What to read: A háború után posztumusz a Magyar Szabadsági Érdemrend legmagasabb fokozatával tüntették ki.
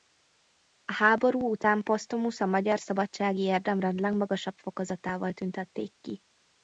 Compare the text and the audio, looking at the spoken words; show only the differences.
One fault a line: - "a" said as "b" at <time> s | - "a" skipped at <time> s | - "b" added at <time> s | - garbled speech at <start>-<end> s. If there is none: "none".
none